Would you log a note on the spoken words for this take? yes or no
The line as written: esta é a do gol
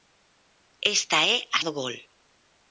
no